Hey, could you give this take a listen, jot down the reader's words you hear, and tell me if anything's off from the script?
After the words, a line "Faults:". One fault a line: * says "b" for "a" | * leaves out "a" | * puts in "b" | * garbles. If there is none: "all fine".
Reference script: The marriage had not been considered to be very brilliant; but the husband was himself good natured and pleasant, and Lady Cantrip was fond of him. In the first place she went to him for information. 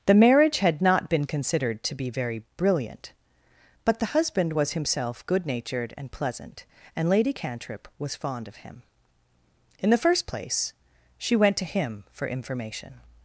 The marriage had not been considered to be very brilliant; but the husband was himself good natured and pleasant, and Lady Cantrip was fond of him. In the first place she went to him for information.
Faults:
all fine